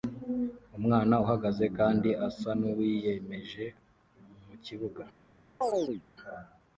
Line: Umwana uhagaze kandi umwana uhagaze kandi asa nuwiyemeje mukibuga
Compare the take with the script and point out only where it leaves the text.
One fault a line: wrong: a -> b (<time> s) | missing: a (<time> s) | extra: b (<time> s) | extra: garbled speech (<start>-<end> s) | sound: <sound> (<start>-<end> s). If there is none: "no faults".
missing: umwana uhagaze kandi (2.1 s)
sound: chirp (5.6-6.0 s)